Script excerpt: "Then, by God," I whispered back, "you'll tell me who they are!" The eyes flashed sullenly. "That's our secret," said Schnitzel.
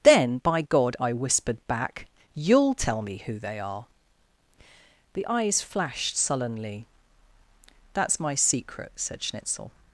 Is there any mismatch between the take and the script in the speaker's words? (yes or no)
yes